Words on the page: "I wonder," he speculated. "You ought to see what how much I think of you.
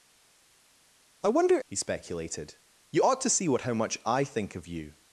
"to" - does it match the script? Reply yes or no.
yes